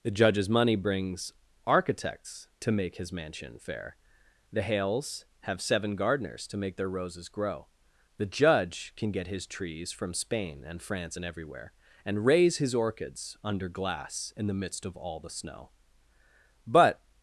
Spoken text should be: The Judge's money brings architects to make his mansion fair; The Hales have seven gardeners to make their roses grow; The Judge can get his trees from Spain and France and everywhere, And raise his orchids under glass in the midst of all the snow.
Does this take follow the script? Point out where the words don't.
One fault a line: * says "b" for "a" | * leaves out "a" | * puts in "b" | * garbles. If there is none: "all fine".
* puts in "But"